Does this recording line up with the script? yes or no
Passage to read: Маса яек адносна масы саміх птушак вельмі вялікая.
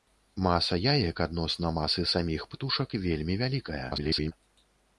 no